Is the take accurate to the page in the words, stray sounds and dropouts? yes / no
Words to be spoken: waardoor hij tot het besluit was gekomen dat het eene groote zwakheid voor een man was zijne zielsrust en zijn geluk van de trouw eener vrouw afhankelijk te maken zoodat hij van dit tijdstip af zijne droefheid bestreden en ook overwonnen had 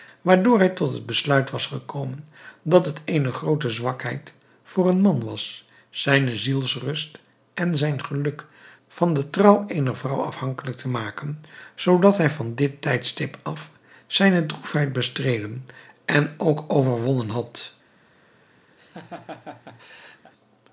no